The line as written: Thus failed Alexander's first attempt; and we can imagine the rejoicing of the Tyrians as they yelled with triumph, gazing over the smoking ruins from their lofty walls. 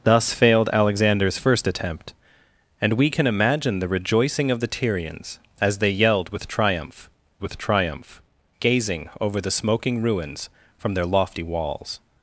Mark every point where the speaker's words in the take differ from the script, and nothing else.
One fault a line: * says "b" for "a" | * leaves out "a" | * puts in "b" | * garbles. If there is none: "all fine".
* puts in "with triumph"